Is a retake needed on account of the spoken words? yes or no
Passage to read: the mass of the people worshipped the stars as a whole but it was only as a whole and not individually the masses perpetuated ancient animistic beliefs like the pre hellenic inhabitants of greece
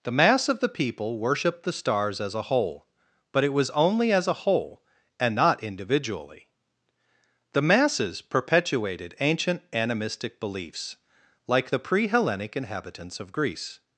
no